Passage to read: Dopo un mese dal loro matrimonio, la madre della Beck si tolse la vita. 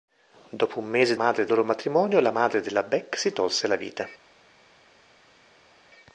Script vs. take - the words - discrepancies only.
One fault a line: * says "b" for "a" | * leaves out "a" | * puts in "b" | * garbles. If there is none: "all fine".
* says "madre" for "dal"